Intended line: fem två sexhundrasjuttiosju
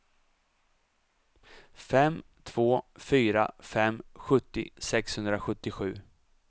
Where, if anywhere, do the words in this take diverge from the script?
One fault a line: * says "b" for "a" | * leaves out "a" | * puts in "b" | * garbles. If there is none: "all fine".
* puts in "fyra fem sjuttio"